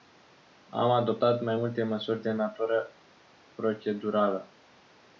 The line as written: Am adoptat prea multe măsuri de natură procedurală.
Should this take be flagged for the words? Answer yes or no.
yes